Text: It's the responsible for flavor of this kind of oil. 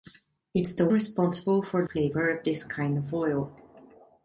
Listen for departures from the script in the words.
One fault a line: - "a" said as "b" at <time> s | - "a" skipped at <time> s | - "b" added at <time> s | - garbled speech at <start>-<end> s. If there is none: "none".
none